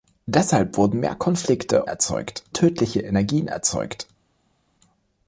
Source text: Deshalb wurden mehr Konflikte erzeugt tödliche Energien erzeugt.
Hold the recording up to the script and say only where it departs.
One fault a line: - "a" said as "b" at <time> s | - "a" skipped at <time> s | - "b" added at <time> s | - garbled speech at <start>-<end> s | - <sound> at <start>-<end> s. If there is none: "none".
none